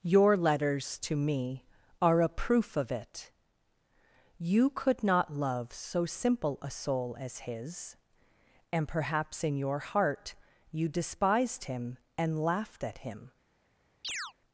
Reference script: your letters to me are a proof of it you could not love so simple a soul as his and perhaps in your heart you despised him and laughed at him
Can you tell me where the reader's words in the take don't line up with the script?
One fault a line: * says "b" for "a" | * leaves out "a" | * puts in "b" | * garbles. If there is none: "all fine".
all fine